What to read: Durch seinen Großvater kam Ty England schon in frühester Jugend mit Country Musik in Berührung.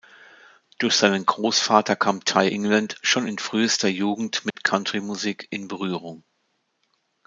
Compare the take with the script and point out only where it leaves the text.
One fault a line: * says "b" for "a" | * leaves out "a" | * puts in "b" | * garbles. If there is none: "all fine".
all fine